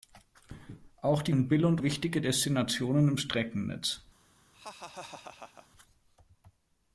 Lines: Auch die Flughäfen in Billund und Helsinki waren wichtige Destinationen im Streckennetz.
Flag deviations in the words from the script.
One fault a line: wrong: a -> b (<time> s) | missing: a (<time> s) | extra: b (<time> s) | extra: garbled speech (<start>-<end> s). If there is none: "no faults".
missing: Flughäfen (1.4 s)
missing: und Helsinki waren (1.8 s)